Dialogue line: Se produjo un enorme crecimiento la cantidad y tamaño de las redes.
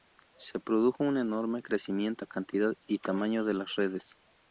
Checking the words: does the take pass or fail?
pass